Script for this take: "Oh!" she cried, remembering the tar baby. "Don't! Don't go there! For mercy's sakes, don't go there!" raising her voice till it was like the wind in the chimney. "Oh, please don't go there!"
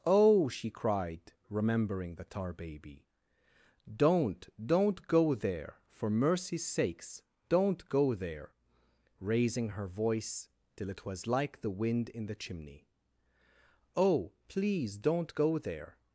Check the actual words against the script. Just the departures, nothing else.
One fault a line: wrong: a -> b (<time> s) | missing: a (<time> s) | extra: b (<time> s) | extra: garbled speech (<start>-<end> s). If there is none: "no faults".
no faults